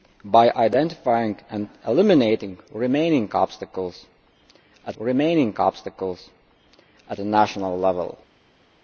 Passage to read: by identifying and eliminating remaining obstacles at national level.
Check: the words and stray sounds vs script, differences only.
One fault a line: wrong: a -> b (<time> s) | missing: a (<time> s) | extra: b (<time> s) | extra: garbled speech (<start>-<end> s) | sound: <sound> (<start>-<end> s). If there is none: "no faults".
extra: remaining obstacles at (5.0 s)